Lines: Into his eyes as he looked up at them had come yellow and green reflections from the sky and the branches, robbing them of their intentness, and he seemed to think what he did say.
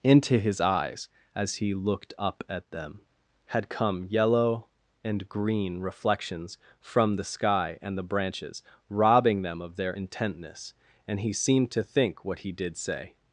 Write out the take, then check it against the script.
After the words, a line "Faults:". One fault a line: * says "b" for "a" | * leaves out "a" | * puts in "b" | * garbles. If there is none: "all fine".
Into his eyes as he looked up at them had come yellow and green reflections from the sky and the branches, robbing them of their intentness, and he seemed to think what he did say.
Faults:
all fine